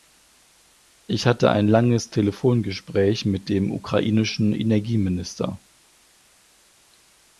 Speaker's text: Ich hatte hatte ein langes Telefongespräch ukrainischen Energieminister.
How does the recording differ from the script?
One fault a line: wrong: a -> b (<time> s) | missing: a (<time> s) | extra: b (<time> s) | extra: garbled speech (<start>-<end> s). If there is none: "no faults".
missing: hatte (1.5 s)
extra: mit dem (3.2 s)